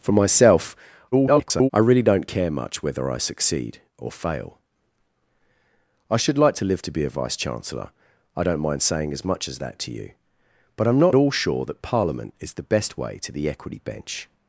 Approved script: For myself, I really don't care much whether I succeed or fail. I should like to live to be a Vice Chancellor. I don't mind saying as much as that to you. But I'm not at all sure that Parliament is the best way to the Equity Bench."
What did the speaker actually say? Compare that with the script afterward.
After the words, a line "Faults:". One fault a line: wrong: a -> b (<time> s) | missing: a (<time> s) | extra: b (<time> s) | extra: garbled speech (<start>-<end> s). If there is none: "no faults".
For myself, [garbled] I really don't care much whether I succeed or fail. I should like to live to be a Vice Chancellor. I don't mind saying as much as that to you. But I'm not all sure that Parliament is the best way to the Equity Bench."
Faults:
extra: garbled speech (1.1-1.7 s)
missing: at (11.1 s)